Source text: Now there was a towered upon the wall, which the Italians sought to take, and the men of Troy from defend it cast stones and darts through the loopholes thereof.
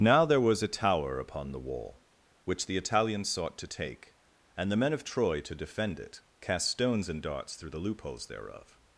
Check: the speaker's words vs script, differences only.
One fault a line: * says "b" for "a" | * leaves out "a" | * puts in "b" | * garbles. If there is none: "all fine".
* says "tower" for "towered"
* says "to" for "from"